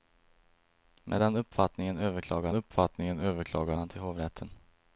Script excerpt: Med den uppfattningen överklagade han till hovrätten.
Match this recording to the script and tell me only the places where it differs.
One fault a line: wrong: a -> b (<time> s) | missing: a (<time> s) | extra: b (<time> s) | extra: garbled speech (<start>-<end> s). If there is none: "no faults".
extra: uppfattningen överklagade (2.5 s)